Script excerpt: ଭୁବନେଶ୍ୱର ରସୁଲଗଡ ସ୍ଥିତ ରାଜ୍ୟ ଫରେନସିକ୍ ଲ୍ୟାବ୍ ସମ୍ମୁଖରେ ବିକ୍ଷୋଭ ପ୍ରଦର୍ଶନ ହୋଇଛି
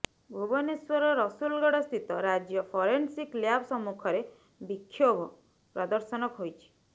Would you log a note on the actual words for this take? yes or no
no